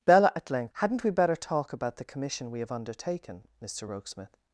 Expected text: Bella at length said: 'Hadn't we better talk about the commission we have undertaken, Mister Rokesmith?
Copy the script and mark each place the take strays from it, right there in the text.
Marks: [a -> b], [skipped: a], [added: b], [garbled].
Bella at length [skipped: said:] 'Hadn't we better talk about the commission we have undertaken, Mister Rokesmith?